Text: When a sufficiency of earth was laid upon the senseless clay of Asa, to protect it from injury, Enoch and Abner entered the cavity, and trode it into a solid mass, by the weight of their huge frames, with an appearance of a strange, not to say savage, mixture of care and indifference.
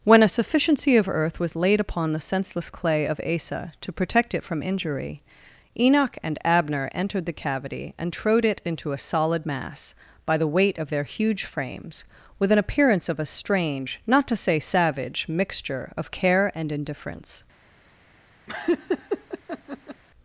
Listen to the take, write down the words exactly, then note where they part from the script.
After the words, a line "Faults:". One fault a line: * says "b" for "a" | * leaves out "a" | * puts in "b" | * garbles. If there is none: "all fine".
When a sufficiency of earth was laid upon the senseless clay of Asa, to protect it from injury, Enoch and Abner entered the cavity, and trode it into a solid mass, by the weight of their huge frames, with an appearance of a strange, not to say savage, mixture of care and indifference.
Faults:
all fine